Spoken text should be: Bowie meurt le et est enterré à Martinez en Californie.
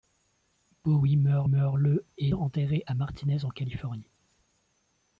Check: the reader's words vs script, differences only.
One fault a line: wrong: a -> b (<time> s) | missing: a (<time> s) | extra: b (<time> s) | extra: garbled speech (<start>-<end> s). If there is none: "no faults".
extra: meurt (1.4 s)
missing: est (2.3 s)